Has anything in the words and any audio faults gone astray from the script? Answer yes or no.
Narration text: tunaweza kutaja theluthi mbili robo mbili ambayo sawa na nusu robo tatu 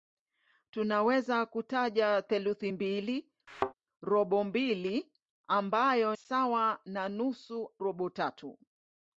yes